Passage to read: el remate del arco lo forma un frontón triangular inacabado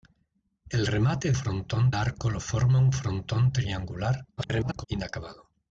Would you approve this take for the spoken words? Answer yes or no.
no